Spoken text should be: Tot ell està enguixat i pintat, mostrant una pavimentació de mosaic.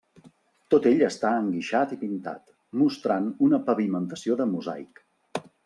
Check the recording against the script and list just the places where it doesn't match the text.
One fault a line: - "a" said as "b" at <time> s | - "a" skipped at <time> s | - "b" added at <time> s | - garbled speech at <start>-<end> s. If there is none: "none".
none